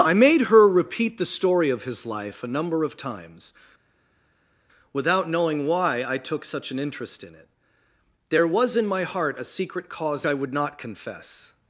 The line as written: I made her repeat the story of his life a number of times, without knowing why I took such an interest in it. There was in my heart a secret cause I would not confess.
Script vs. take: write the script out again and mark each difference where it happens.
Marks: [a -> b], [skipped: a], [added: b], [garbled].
I made her repeat the story of his life a number of times, without knowing why I took such an interest in it. There was in my heart a secret cause I would not confess.